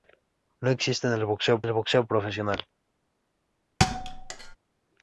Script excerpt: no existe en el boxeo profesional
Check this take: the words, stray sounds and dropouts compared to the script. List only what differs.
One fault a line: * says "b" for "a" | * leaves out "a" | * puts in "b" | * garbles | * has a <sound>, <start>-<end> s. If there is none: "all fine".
* puts in "el boxeo"
* has a thud, 3.8-4.6 s